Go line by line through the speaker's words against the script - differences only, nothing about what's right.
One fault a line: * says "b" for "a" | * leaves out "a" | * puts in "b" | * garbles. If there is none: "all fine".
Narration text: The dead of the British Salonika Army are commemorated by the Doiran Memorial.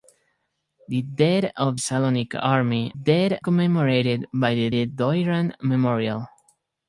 * leaves out "the British"
* says "dead" for "are"
* puts in "the"